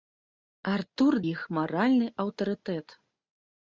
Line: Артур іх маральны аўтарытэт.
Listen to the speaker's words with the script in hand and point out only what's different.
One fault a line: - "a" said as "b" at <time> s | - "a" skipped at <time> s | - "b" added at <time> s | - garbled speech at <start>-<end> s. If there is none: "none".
none